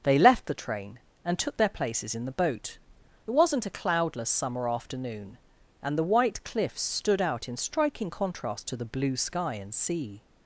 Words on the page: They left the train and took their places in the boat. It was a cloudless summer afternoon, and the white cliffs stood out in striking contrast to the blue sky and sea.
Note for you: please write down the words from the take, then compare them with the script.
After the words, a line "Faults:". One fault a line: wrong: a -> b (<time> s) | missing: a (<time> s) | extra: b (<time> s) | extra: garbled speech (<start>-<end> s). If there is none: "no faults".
They left the train and took their places in the boat. It wasn't a cloudless summer afternoon, and the white cliffs stood out in striking contrast to the blue sky and sea.
Faults:
wrong: was -> wasn't (3.3 s)